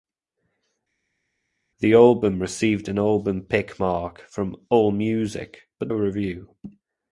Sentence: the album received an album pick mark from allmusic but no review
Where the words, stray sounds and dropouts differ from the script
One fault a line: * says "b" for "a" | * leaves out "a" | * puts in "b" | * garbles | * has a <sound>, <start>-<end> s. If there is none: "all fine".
* leaves out "no"